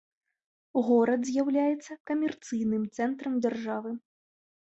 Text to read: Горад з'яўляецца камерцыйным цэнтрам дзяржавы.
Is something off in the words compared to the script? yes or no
no